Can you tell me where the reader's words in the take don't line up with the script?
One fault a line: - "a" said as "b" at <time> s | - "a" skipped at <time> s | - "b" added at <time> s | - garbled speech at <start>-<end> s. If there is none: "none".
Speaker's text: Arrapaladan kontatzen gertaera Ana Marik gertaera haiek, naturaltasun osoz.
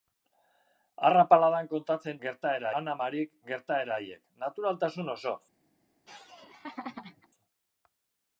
none